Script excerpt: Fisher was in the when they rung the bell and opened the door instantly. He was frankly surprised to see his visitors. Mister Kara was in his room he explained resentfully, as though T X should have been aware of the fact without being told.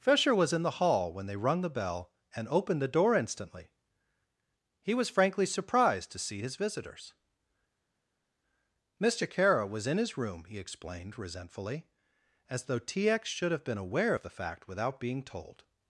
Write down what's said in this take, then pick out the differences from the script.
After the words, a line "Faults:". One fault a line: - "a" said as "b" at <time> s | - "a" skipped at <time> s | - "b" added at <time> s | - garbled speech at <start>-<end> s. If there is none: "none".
Fisher was in the hall when they rung the bell and opened the door instantly. He was frankly surprised to see his visitors. Mister Kara was in his room he explained resentfully, as though T X should have been aware of the fact without being told.
Faults:
- "hall" added at 0.8 s